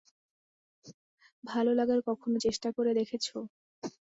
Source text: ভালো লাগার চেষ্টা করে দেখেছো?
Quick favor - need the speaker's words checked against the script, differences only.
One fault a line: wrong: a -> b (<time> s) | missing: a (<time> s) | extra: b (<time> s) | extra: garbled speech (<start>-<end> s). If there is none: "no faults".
extra: কখনো (2.1 s)